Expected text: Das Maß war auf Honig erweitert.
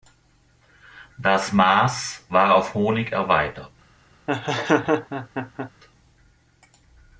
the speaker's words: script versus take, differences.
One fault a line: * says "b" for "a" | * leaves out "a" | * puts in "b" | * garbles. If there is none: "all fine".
all fine